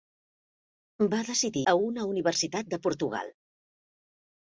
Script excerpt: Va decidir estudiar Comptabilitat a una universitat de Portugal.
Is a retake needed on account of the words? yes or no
yes